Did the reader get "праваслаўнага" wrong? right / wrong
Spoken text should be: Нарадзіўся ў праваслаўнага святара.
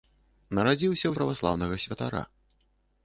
right